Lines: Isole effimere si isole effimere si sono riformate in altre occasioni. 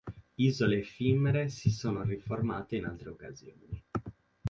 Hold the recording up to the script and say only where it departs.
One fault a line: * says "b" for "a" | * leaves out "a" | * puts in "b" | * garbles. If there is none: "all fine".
* leaves out "isole effimere si"